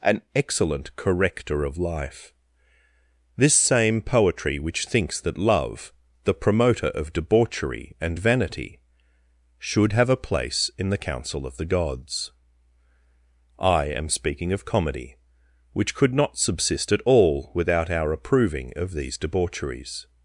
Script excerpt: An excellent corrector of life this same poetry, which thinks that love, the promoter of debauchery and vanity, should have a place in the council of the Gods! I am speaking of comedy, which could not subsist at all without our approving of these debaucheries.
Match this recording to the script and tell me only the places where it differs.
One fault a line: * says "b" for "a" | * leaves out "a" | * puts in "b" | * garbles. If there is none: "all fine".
all fine